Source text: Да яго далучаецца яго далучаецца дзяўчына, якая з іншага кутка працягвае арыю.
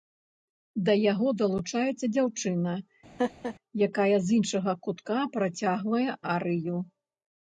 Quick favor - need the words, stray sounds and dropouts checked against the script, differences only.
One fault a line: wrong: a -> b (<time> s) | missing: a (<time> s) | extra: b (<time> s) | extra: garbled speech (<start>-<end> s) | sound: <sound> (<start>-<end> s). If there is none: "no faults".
missing: яго далучаецца (2.0 s)
sound: laugh (3.2-3.5 s)